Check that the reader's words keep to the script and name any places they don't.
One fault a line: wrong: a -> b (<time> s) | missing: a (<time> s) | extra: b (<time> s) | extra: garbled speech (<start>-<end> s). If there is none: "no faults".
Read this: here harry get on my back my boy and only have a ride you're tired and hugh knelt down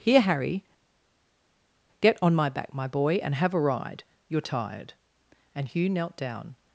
missing: only (3.4 s)